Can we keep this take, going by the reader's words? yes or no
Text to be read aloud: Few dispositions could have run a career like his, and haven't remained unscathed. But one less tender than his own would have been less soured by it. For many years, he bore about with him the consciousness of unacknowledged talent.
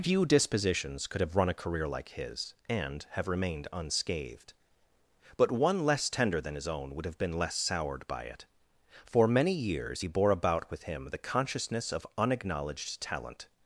no